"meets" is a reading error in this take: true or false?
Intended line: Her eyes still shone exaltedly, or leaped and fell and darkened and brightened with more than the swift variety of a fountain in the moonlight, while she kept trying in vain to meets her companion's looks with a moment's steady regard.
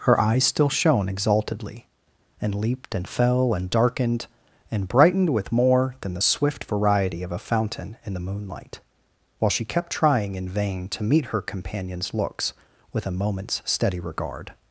true